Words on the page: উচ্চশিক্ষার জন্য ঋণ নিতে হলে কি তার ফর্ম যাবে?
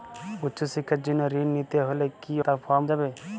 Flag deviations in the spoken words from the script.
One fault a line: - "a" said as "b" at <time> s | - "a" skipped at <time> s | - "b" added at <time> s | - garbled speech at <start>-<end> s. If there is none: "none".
none